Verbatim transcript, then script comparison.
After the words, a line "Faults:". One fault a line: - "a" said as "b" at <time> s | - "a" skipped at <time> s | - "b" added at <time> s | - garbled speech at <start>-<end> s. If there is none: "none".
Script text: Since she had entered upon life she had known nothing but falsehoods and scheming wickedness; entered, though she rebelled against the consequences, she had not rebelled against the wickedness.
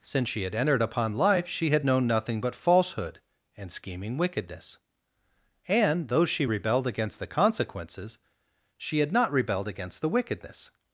Since she had entered upon life she had known nothing but falsehood and scheming wickedness; and, though she rebelled against the consequences, she had not rebelled against the wickedness.
Faults:
- "falsehoods" said as "falsehood" at 2.5 s
- "entered" said as "and" at 5.7 s